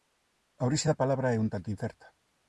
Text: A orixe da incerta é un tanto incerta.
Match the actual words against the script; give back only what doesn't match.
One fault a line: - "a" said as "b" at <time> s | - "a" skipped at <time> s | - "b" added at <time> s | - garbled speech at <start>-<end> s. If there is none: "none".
- "incerta" said as "palabra" at 1.0 s